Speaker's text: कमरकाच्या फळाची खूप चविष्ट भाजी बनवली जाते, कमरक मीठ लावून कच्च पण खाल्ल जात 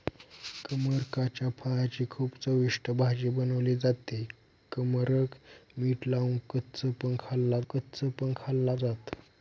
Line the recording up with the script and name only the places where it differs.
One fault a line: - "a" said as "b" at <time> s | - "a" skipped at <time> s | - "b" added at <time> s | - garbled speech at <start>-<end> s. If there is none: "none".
- "कच्च पण खाल्ल" added at 7.7 s